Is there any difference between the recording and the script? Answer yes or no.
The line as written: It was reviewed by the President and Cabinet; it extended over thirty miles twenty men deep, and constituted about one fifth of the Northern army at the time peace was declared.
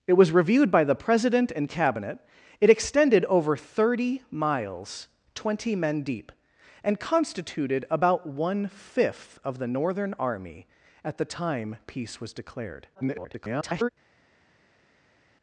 yes